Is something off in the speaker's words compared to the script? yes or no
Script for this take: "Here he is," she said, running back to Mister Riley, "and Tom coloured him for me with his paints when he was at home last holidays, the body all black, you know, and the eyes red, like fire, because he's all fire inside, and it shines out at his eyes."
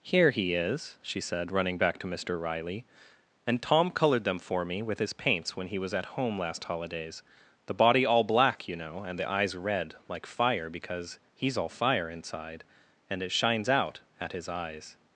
yes